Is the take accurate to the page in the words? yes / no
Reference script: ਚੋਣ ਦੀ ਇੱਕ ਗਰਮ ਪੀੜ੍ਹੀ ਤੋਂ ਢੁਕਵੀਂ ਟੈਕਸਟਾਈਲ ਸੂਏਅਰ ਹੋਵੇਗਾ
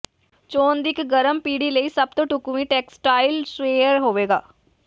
no